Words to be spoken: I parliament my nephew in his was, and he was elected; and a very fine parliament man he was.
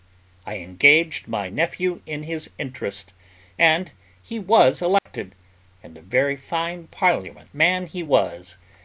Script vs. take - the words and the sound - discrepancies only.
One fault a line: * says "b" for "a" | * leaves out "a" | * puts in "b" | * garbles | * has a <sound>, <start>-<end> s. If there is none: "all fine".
* says "engaged" for "parliament"
* says "interest" for "was"
* has a dropout, 5.0-5.1 s